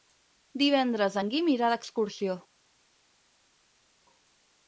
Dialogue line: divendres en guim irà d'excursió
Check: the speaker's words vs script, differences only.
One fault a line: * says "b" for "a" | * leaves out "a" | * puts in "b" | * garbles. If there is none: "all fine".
all fine